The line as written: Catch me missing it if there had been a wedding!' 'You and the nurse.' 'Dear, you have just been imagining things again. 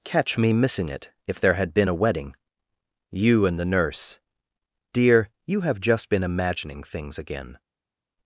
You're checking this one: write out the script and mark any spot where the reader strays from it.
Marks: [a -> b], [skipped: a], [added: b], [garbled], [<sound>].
Catch me missing it if there had been a wedding!' 'You and the nurse.' 'Dear, you have just been imagining things again.